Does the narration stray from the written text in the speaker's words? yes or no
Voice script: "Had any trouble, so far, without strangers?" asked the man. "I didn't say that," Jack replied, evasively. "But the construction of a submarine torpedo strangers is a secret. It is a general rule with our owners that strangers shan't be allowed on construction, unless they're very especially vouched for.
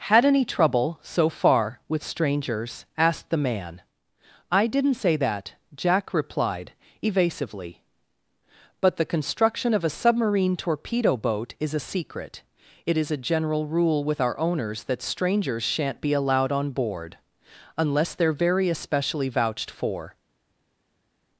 yes